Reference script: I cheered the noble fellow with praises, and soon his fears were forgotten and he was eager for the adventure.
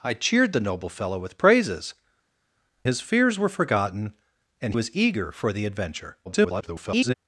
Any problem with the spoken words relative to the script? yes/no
yes